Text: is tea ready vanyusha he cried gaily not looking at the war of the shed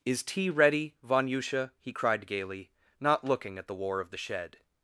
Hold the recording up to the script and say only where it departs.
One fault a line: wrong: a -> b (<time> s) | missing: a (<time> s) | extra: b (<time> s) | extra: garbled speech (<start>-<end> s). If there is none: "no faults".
no faults